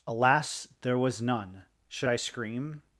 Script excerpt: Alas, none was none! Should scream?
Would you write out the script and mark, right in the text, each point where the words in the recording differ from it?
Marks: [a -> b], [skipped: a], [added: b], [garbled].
Alas, [none -> there] was none! Should [added: I] scream?